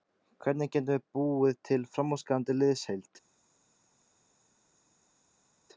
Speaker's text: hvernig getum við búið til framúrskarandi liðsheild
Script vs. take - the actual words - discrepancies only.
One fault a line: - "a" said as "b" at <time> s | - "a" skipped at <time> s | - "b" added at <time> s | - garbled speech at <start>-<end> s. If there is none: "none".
none